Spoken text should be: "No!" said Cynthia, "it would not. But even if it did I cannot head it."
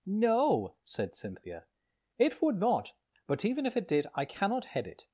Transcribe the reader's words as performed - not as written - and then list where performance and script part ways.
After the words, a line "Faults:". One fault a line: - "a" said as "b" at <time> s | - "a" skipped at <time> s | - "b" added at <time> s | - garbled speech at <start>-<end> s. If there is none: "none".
"No!" said Cynthia, "it would not. But even if it did I cannot head it."
Faults:
none